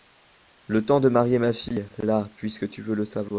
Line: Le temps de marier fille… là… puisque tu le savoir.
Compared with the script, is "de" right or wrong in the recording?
right